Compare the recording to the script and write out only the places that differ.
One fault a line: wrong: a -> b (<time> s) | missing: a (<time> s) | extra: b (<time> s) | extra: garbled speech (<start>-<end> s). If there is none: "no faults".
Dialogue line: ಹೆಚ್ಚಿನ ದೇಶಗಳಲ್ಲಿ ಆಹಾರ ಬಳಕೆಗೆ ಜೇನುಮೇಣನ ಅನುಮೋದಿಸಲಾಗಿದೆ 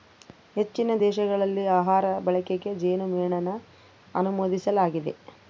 no faults